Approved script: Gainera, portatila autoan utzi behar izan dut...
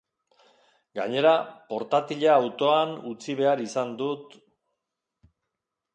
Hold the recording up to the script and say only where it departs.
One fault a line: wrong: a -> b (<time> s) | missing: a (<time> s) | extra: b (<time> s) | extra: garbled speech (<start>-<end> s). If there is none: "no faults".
no faults